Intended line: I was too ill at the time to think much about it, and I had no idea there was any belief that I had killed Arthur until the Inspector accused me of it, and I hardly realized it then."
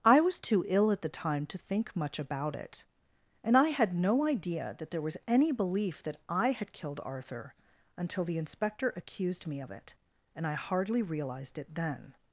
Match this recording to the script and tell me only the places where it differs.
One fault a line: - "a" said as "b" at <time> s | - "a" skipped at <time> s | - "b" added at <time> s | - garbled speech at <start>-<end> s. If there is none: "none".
- "that" added at 4.8 s